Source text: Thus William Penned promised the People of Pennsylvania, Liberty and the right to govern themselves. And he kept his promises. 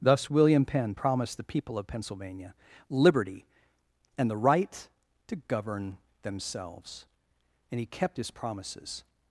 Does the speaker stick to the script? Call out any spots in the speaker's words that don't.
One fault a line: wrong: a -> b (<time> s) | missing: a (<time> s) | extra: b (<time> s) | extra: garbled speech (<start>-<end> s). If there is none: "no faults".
wrong: Penned -> Penn (0.7 s)